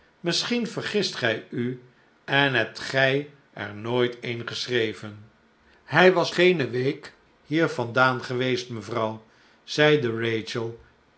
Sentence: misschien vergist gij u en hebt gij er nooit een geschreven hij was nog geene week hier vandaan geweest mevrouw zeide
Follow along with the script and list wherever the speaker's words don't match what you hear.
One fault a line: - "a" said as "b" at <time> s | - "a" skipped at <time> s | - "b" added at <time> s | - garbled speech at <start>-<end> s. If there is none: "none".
- "nog" skipped at 6.3 s